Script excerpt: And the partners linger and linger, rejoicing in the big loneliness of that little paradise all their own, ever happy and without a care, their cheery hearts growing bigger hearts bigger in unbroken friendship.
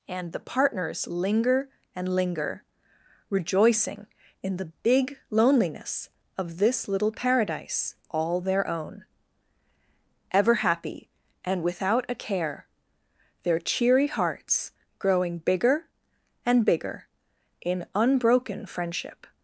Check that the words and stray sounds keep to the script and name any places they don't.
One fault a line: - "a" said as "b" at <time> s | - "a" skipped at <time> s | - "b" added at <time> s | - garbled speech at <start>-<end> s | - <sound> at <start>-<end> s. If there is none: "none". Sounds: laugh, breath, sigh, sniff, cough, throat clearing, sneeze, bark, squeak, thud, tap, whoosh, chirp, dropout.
- "that" said as "this" at 6.6 s
- "hearts" said as "and" at 16.5 s